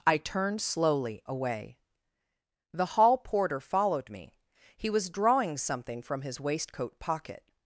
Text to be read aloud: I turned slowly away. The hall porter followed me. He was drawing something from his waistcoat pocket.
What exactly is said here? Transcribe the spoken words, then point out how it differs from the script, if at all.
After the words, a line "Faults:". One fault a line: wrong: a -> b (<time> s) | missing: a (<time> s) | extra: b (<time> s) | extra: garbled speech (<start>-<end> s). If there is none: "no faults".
I turned slowly away. The hall porter followed me. He was drawing something from his waistcoat pocket.
Faults:
no faults